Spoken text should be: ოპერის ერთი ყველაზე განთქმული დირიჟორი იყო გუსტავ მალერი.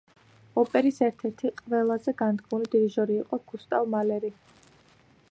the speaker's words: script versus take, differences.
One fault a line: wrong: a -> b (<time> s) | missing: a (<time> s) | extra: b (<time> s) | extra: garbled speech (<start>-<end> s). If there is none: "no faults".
extra: ერთ (1.1 s)